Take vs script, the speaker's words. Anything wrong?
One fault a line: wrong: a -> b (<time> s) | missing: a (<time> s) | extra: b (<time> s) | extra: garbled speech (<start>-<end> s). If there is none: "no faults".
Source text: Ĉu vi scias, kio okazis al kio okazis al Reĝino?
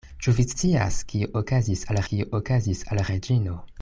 no faults